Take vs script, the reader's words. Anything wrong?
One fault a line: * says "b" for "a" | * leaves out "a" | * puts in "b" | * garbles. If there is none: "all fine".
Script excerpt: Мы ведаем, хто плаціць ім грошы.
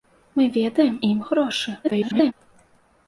* leaves out "хто плаціць"
* garbles